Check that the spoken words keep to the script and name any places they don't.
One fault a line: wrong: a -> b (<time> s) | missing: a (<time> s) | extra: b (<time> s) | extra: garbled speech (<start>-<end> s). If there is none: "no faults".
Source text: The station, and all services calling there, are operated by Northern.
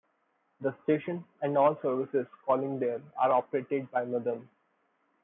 no faults